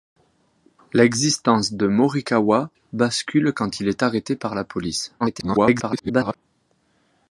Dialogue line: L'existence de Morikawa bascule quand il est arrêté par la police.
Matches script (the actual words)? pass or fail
fail